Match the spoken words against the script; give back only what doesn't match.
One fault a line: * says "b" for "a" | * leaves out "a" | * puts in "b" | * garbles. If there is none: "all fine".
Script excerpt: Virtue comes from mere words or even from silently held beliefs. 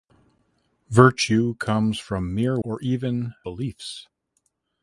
* leaves out "words"
* leaves out "from silently held"